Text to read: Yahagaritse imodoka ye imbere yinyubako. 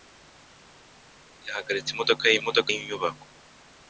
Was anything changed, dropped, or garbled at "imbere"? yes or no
yes